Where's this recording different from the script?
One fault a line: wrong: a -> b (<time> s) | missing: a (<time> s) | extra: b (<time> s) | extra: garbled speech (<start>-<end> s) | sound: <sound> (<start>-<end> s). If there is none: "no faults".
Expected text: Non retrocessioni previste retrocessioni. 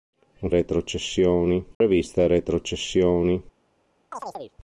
sound: dropout (1.7-1.8 s)
sound: chirp (4.1-4.6 s)